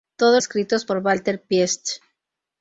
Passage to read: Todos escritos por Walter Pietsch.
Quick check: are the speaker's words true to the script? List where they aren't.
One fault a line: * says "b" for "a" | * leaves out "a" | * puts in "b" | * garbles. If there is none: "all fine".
all fine